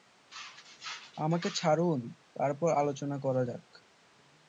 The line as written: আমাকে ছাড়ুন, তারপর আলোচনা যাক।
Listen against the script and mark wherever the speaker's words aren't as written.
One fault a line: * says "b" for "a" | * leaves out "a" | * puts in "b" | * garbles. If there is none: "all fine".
* puts in "করা"